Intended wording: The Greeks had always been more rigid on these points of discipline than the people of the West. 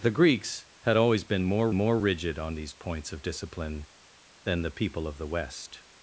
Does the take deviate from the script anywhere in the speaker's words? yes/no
yes